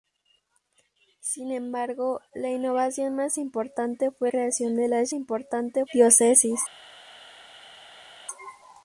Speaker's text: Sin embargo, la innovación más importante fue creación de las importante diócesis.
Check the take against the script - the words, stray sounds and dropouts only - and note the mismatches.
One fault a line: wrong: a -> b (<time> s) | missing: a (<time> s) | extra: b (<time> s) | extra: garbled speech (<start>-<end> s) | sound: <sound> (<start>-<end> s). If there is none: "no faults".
no faults